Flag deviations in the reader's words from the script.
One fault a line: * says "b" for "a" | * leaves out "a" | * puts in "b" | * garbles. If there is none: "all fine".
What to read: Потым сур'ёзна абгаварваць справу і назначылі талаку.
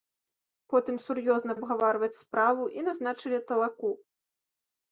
all fine